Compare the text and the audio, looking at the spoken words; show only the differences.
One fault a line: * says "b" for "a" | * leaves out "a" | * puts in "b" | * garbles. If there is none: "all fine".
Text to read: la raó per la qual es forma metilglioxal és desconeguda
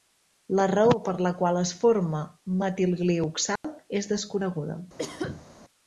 all fine